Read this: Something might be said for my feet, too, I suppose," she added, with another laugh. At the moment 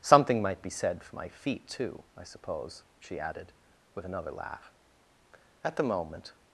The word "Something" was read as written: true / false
true